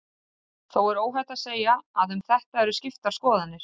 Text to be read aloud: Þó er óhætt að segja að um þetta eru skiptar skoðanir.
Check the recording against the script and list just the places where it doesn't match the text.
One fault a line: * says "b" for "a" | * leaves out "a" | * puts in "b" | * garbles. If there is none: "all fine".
all fine